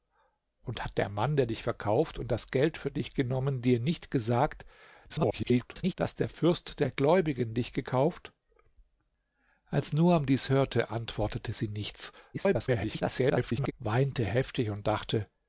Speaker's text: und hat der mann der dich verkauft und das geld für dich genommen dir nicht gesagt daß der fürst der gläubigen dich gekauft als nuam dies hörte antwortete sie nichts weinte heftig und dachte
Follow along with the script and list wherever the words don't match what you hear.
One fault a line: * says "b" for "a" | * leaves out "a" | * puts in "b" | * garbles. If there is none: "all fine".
* garbles
* garbles